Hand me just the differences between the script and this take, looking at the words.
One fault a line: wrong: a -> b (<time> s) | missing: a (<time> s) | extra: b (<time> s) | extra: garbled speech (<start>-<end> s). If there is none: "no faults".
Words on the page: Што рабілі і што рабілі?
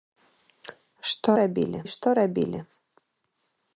no faults